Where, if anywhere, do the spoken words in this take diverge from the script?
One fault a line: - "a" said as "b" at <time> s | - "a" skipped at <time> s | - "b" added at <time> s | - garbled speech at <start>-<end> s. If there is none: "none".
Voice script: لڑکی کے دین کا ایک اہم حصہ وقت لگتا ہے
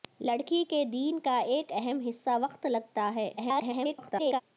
- garbled speech at 3.4-4.4 s